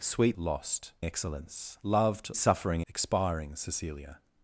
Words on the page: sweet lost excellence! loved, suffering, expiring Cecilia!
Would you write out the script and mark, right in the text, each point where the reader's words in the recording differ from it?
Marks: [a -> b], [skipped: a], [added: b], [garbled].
sweet lost excellence! loved, suffering, expiring Cecilia!